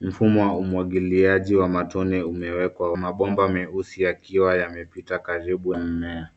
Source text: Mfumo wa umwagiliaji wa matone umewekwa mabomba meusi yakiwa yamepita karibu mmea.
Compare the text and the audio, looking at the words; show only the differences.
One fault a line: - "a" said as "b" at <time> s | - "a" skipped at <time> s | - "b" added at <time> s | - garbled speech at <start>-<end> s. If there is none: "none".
none